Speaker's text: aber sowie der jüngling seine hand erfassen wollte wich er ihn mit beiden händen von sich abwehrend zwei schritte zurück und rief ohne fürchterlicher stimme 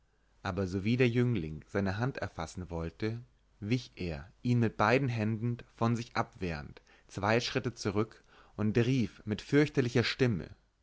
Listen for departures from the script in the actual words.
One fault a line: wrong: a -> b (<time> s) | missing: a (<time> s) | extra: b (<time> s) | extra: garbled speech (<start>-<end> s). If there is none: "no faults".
wrong: ohne -> mit (9.2 s)